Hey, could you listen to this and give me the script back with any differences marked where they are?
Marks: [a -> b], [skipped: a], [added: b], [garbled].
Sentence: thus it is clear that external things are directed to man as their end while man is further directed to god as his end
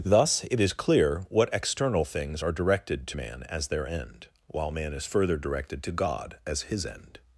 thus it is clear [that -> what] external things are directed to man as their end while man is further directed to god as his end